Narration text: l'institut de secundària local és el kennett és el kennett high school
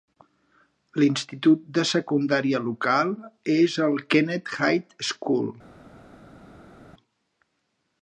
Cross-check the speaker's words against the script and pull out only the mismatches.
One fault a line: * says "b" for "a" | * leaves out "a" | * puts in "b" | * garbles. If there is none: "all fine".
* leaves out "és el kennett"